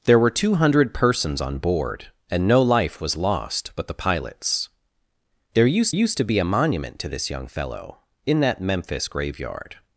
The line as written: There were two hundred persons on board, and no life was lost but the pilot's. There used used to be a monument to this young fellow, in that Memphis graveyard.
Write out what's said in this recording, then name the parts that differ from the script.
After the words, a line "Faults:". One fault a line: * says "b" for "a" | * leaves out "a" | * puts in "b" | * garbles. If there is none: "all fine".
There were two hundred persons on board, and no life was lost but the pilot's. There used used to be a monument to this young fellow, in that Memphis graveyard.
Faults:
all fine